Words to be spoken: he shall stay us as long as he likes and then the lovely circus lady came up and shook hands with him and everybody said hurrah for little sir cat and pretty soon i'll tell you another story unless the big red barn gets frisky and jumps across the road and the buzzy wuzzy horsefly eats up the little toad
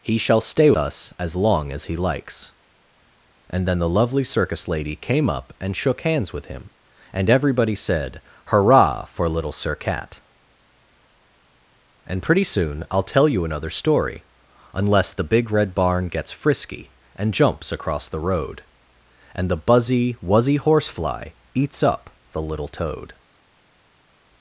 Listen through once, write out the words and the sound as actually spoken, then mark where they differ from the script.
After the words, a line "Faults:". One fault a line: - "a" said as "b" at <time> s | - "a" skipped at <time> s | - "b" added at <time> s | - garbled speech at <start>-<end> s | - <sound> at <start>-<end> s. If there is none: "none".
he shall stay us as long as he likes and then the lovely circus lady came up and shook hands with him and everybody said hurrah for little sir cat and pretty soon i'll tell you another story unless the big red barn gets frisky and jumps across the road and the buzzy wuzzy horsefly eats up the little toad
Faults:
none